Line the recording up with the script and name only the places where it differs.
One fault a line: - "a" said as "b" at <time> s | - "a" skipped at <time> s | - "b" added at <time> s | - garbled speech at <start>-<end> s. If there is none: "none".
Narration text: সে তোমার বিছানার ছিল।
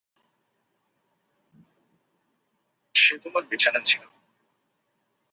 none